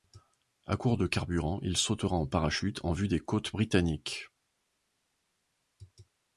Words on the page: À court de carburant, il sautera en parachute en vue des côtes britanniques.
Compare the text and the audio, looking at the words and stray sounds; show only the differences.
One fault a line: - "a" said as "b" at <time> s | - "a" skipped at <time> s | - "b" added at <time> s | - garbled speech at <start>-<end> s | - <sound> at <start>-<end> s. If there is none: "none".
none